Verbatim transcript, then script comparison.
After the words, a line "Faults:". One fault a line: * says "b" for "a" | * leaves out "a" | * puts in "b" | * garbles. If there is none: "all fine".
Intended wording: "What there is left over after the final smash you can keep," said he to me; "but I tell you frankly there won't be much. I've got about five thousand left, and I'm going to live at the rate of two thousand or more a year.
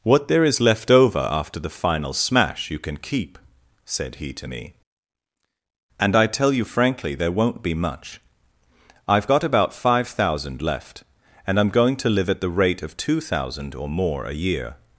"What there is left over after the final smash you can keep," said he to me; "and I tell you frankly there won't be much. I've got about five thousand left, and I'm going to live at the rate of two thousand or more a year.
Faults:
* says "and" for "but"